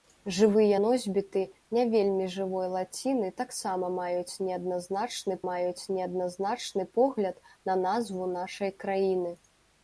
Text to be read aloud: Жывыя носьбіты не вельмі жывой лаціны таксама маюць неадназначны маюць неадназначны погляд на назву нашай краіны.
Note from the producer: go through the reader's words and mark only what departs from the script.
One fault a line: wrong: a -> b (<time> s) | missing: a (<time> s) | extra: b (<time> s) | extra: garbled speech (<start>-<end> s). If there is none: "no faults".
no faults